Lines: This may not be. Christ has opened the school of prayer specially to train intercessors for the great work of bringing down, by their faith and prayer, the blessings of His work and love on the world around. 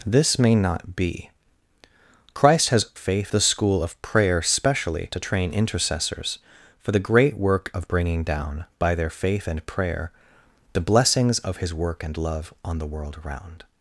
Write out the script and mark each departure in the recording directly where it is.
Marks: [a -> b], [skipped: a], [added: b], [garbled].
This may not be. Christ has [opened -> faith] the school of prayer specially to train intercessors for the great work of bringing down, by their faith and prayer, the blessings of His work and love on the world around.